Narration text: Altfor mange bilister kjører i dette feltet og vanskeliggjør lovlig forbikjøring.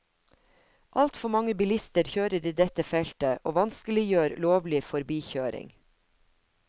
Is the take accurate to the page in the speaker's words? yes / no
yes